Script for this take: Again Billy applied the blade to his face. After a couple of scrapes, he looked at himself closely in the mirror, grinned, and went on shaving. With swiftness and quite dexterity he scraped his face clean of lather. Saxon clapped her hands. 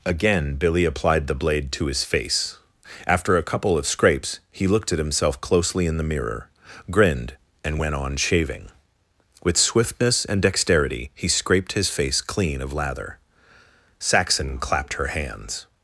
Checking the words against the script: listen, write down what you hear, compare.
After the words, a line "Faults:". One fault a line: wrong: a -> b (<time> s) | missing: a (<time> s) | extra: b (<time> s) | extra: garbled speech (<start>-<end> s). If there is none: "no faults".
Again Billy applied the blade to his face. After a couple of scrapes, he looked at himself closely in the mirror, grinned, and went on shaving. With swiftness and dexterity he scraped his face clean of lather. Saxon clapped her hands.
Faults:
missing: quite (10.4 s)